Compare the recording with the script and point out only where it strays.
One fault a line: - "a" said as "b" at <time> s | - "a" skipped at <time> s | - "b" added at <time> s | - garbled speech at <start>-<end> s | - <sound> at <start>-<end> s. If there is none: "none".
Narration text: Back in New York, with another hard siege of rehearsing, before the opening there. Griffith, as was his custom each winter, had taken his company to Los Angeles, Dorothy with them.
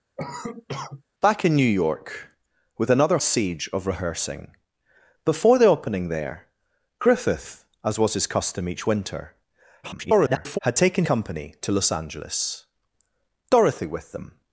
- cough at 0.2-1.0 s
- "hard" skipped at 3.2 s
- garbled speech at 9.8-10.6 s
- "his" skipped at 11.0 s